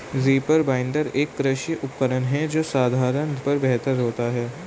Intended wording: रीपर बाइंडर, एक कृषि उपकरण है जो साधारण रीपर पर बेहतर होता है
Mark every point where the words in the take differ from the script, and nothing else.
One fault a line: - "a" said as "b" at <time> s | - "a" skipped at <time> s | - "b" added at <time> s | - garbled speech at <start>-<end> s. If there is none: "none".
- "रीपर" skipped at 3.4 s